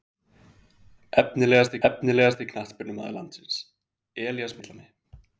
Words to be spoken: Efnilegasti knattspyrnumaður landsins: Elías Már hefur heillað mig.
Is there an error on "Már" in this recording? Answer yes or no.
yes